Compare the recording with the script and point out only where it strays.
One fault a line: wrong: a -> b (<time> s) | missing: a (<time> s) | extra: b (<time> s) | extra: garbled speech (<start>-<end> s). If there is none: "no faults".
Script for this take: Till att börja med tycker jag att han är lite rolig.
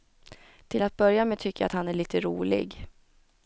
no faults